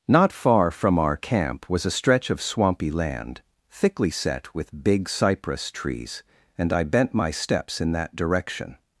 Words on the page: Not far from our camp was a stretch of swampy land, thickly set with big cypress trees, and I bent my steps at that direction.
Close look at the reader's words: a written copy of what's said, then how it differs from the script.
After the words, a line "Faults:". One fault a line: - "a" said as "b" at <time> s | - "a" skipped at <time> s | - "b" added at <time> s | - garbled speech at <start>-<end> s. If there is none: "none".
Not far from our camp was a stretch of swampy land, thickly set with big cypress trees, and I bent my steps in that direction.
Faults:
- "at" said as "in" at 7.8 s